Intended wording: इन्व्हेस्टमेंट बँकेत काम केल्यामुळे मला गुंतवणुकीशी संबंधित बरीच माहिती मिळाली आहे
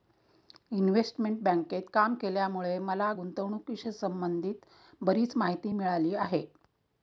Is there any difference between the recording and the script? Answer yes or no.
no